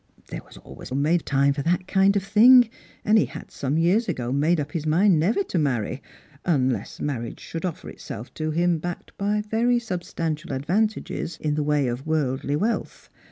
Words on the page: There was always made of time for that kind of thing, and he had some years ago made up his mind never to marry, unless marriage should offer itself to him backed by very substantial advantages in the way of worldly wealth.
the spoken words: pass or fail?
pass